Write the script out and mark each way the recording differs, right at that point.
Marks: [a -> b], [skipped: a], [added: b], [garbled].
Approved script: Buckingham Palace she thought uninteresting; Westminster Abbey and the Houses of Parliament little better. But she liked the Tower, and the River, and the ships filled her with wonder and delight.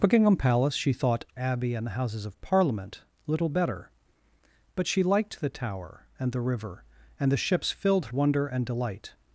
Buckingham Palace she thought [skipped: uninteresting; Westminster] Abbey and the Houses of Parliament little better. But she liked the Tower, and the River, and the ships filled [skipped: her with] wonder and delight.